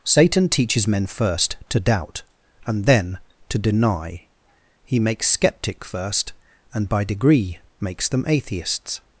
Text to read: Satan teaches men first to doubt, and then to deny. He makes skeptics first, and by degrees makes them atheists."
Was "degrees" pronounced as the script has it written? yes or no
no